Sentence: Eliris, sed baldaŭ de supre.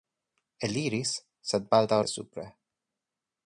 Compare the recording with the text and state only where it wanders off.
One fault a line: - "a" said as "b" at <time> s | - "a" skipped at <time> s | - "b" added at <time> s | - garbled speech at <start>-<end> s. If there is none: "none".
none